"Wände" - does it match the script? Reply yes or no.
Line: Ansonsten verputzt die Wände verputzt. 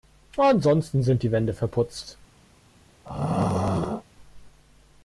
yes